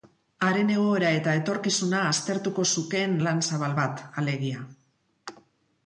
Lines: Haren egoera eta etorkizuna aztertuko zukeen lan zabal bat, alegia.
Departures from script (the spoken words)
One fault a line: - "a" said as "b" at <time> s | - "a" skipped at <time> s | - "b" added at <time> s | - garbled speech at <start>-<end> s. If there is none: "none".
none